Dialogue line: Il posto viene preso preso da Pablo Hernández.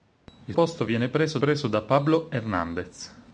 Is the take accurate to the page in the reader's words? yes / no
yes